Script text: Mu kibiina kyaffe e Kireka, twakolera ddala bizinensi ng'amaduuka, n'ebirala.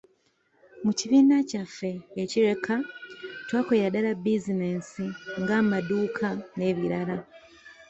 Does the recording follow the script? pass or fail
pass